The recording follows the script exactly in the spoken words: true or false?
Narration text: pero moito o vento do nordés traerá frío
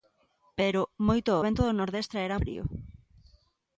true